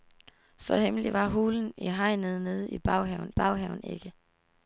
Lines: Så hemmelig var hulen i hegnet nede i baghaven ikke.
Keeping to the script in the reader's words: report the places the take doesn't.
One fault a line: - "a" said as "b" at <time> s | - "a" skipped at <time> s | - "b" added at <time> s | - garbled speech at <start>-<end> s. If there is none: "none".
- "baghaven" added at 3.3 s